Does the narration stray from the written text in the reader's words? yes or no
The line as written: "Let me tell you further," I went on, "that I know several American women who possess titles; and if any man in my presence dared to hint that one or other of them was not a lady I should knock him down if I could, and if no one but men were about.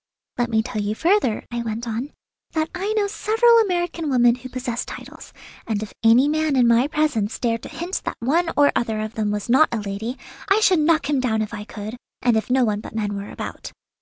no